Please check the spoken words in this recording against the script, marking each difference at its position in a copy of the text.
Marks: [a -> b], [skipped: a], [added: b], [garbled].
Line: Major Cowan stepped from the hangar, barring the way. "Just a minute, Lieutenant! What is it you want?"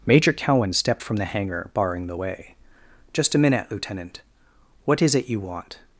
Major Cowan stepped from the hangar, barring the way. "Just a minute, Lieutenant! What is it you want?"